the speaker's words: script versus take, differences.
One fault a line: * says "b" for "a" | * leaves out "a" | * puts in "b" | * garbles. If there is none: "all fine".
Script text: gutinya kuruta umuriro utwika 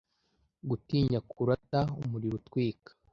all fine